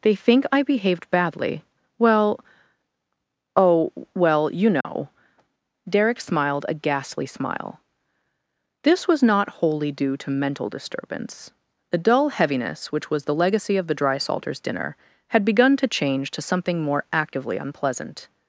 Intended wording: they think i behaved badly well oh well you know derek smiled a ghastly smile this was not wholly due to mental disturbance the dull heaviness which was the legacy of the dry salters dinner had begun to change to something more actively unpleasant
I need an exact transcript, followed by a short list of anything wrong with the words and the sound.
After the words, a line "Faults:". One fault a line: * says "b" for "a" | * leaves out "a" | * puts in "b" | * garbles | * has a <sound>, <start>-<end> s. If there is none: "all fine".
they think i behaved badly well oh well you know derek smiled a ghastly smile this was not wholly due to mental disturbance the dull heaviness which was the legacy of the dry salters dinner had begun to change to something more actively unpleasant
Faults:
* has a dropout, 4.8-4.8 s